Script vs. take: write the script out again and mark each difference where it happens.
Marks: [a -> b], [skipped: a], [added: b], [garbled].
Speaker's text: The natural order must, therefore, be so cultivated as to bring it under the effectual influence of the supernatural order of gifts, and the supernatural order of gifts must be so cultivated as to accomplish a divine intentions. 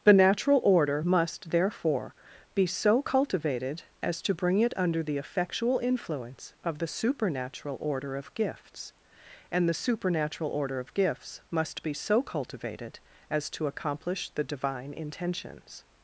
The natural order must, therefore, be so cultivated as to bring it under the effectual influence of the supernatural order of gifts, and the supernatural order of gifts must be so cultivated as to accomplish [a -> the] divine intentions.